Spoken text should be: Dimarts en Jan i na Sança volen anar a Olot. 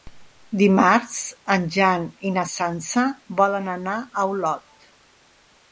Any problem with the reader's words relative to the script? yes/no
no